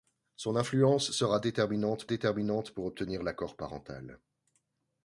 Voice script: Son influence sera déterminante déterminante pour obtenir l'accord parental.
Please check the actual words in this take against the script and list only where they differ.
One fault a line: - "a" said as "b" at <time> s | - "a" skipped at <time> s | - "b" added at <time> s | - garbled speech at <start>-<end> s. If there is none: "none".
none